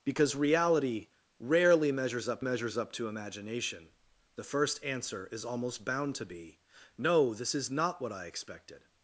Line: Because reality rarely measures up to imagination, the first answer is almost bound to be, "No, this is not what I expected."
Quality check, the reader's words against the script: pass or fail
fail